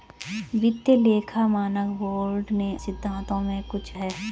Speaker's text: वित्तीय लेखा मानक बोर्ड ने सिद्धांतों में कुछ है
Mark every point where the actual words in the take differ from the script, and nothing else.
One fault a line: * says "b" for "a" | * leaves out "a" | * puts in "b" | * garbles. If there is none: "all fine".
all fine